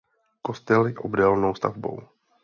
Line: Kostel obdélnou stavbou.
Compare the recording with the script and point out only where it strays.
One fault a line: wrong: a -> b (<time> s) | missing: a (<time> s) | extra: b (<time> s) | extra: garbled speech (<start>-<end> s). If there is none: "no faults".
no faults